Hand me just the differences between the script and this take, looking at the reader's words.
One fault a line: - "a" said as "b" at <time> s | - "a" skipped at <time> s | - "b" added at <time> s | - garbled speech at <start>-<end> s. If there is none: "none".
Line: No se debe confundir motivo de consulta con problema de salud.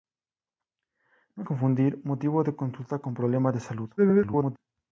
- "se debe" skipped at 1.4 s
- garbled speech at 4.0-4.6 s